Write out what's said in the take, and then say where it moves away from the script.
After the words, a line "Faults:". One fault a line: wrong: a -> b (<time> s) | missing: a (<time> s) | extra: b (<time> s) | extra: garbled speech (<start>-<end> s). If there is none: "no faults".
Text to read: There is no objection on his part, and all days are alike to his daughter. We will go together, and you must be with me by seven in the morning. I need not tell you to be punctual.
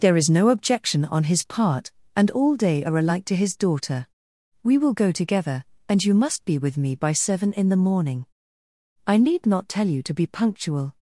There is no objection on his part, and all day are alike to his daughter. We will go together, and you must be with me by seven in the morning. I need not tell you to be punctual.
Faults:
wrong: days -> day (2.5 s)